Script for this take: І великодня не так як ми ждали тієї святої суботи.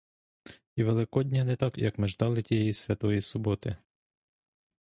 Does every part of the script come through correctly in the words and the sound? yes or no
yes